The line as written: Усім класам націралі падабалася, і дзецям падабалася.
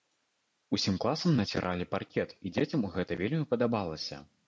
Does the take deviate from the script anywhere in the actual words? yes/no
yes